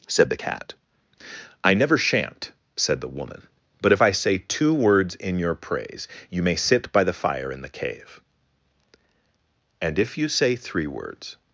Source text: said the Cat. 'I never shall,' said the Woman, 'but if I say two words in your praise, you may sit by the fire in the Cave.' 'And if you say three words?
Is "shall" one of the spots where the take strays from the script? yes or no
yes